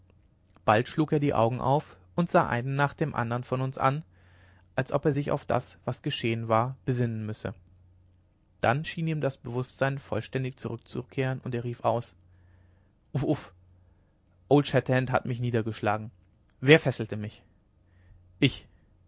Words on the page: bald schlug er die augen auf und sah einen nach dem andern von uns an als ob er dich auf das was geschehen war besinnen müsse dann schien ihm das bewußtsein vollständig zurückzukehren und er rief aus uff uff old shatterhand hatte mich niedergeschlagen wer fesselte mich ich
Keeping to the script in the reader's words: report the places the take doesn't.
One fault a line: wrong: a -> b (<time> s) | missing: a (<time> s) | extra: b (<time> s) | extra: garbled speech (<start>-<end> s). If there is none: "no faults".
wrong: dich -> sich (5.1 s)
wrong: hatte -> hat (15.1 s)